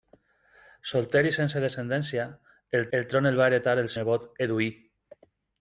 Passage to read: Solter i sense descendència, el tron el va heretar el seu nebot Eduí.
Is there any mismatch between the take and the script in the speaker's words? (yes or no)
yes